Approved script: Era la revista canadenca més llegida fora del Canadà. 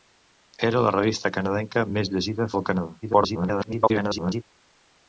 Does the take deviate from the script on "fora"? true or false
true